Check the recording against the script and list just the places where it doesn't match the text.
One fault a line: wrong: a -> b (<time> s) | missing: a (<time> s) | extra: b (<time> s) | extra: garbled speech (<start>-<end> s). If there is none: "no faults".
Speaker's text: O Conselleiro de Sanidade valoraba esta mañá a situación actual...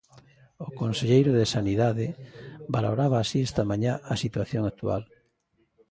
extra: así (3.2 s)